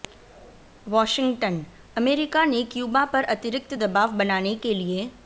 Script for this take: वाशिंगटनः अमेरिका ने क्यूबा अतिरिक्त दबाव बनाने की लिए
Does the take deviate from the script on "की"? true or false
true